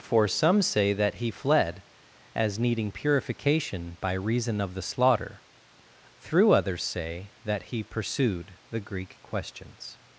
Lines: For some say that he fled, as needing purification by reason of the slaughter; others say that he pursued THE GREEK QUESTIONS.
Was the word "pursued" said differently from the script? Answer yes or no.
no